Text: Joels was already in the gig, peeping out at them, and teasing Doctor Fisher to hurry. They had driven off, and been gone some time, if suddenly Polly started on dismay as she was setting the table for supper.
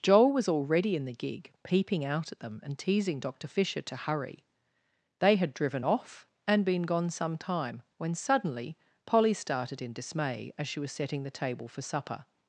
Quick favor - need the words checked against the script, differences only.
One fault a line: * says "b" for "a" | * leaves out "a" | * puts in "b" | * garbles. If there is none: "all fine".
* says "Joel" for "Joels"
* says "when" for "if"
* says "in" for "on"